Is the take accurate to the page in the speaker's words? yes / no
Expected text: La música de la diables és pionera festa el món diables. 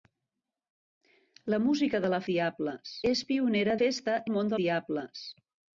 yes